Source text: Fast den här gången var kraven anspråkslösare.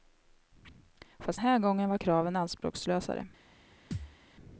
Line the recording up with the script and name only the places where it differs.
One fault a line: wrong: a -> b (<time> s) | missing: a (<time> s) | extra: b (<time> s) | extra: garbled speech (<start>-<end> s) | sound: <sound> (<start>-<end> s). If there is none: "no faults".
missing: den (1.4 s)
sound: thud (3.9-4.2 s)